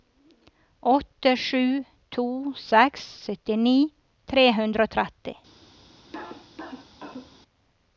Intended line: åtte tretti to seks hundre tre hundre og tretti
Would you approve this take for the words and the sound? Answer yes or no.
no